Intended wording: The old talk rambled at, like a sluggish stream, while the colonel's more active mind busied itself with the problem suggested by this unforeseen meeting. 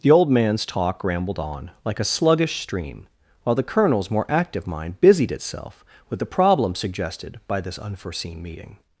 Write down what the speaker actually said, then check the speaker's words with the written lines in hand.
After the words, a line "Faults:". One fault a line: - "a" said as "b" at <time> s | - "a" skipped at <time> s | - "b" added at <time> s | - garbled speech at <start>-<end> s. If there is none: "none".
The old man's talk rambled on, like a sluggish stream, while the colonel's more active mind busied itself with the problem suggested by this unforeseen meeting.
Faults:
- "man's" added at 0.3 s
- "at" said as "on" at 1.4 s